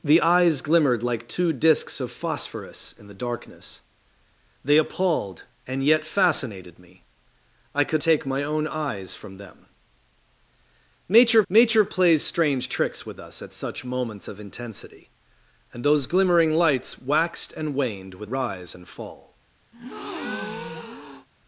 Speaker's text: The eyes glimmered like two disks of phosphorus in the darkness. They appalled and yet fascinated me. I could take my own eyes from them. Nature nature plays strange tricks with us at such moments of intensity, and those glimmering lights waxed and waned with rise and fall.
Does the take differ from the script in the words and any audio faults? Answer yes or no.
yes